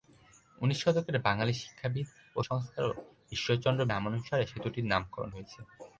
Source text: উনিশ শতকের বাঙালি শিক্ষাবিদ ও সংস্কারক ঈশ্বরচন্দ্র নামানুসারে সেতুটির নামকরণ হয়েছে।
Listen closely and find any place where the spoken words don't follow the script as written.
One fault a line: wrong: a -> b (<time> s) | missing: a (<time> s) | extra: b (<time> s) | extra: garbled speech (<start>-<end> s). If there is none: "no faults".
no faults